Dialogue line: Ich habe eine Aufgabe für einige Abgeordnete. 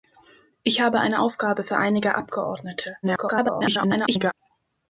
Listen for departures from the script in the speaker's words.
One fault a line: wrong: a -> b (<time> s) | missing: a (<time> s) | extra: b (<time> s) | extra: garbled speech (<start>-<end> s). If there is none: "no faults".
extra: garbled speech (3.0-4.3 s)